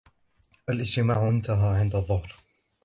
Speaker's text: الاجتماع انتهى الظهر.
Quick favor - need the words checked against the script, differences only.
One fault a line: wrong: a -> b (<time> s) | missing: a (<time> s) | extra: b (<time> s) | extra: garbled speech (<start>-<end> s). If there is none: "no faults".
extra: عند (1.8 s)